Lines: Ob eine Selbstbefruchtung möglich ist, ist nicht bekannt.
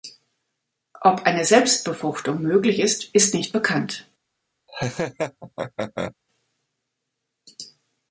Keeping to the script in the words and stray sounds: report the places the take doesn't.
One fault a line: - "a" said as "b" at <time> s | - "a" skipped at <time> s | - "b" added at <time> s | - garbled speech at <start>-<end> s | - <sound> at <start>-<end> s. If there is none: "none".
- laugh at 4.7-6.1 s